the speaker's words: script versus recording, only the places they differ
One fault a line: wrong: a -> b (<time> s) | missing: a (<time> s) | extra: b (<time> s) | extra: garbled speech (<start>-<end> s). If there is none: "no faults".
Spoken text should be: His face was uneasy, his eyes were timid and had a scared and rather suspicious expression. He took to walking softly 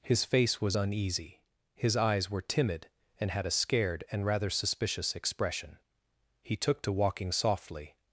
no faults